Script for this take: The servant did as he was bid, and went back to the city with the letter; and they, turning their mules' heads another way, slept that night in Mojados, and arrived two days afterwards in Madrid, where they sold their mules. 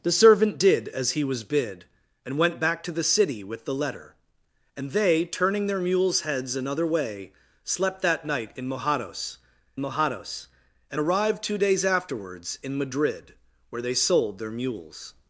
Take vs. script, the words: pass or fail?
fail